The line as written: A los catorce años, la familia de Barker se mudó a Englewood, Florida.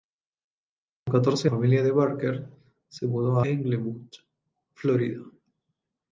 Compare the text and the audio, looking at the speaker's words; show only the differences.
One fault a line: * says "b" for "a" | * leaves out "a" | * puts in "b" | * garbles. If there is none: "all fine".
* leaves out "años la"
* leaves out "a"